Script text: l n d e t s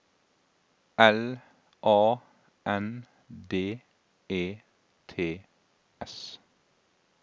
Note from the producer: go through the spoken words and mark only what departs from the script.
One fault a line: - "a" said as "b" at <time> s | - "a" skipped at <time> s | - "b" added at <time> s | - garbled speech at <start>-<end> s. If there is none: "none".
- "a" added at 1.8 s